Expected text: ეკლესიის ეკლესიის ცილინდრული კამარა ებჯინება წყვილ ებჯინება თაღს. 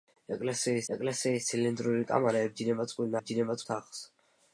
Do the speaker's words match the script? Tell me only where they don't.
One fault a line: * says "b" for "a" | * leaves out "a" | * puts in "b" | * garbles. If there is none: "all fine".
all fine